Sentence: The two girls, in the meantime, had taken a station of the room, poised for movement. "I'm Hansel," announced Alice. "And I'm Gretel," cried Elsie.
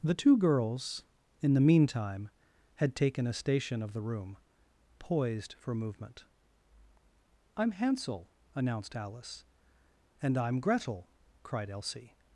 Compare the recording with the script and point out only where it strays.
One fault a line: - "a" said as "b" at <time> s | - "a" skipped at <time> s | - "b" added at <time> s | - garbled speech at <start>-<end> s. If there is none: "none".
none